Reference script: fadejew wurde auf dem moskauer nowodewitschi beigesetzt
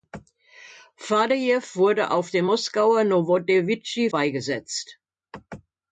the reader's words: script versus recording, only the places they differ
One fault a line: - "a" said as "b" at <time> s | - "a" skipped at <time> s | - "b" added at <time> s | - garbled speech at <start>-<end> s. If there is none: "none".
none